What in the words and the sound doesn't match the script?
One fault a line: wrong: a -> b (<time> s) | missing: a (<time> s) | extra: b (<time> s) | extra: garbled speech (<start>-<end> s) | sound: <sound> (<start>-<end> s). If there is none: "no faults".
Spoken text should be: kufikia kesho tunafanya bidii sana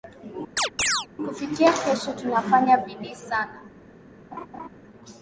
sound: chirp (0.6-1.1 s)
sound: laugh (4.3-4.7 s)